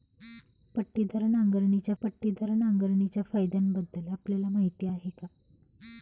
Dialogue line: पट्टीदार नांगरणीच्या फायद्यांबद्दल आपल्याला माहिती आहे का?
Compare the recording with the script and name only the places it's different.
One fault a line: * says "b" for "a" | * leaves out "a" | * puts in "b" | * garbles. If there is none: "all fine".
* puts in "पट्टीदार नांगरणीच्या"